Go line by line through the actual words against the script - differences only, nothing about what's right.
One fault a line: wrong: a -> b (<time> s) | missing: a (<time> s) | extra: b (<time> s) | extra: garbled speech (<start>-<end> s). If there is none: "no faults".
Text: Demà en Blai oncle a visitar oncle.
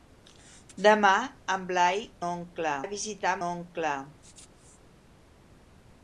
no faults